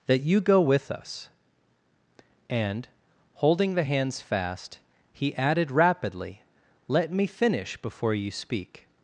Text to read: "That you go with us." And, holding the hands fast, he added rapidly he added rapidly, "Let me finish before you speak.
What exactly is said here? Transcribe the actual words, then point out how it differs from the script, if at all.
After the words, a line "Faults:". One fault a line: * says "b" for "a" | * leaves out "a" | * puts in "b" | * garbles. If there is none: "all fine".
"That you go with us." And, holding the hands fast, he added rapidly, "Let me finish before you speak.
Faults:
* leaves out "he added rapidly"